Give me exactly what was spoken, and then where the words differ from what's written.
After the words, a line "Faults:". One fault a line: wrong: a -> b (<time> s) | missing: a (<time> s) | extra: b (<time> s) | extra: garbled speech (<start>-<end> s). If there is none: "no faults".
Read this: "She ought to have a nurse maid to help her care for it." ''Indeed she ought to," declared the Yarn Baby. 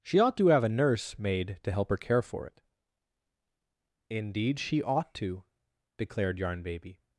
"She ought to have a nurse maid to help her care for it." ''Indeed she ought to," declared Yarn Baby.
Faults:
missing: the (6.4 s)